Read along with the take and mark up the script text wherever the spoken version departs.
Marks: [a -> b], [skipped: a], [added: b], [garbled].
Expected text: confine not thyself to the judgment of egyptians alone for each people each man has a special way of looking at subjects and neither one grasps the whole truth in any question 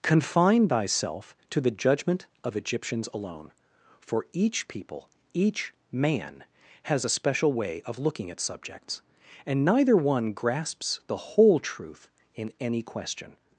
confine [skipped: not] thyself to the judgment of egyptians alone for each people each man has a special way of looking at subjects and neither one grasps the whole truth in any question